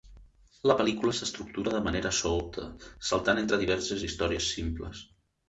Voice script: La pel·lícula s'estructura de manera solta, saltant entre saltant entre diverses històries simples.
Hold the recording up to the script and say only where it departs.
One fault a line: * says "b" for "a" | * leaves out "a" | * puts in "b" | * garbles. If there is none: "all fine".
* leaves out "saltant entre"